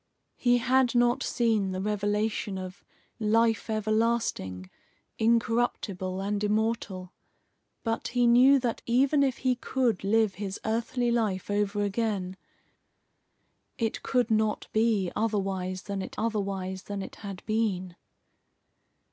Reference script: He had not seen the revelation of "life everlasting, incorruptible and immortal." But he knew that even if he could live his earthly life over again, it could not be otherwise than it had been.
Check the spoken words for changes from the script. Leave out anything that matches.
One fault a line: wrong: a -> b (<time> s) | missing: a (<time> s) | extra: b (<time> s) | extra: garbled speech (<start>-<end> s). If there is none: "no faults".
extra: otherwise than it (16.2 s)